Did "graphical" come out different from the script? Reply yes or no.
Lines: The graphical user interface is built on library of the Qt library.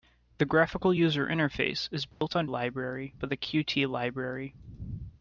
no